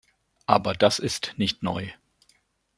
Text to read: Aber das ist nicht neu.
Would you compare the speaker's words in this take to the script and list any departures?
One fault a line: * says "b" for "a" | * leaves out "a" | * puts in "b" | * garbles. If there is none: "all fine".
all fine